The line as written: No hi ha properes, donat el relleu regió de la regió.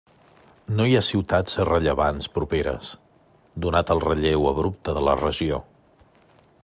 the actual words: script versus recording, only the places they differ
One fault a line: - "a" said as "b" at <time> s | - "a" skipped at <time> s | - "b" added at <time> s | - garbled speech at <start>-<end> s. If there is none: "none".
- "ciutats rellevants" added at 1.1 s
- "regió" said as "abrupte" at 4.5 s